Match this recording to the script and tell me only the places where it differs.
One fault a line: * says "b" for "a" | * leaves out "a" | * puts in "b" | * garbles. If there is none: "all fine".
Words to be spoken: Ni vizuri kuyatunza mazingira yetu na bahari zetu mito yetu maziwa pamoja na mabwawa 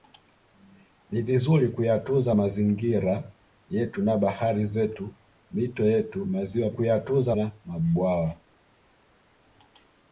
* says "kuyatunza" for "pamoja"